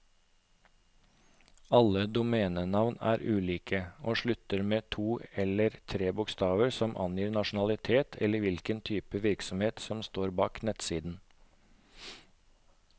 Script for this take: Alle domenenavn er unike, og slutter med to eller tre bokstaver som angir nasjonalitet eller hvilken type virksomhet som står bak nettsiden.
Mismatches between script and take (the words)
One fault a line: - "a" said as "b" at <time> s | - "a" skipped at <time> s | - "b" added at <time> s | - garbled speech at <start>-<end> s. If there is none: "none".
none